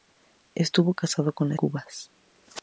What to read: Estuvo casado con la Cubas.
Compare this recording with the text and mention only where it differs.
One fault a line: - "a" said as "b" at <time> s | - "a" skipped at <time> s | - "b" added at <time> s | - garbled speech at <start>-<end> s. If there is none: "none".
none